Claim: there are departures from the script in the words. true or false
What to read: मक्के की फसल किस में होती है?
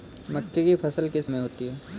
false